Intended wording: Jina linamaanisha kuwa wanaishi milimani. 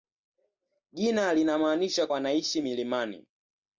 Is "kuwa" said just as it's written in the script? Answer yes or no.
no